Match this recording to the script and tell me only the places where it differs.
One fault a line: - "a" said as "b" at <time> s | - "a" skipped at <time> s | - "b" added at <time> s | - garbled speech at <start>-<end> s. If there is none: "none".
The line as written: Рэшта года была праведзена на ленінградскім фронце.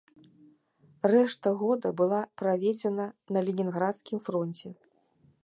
none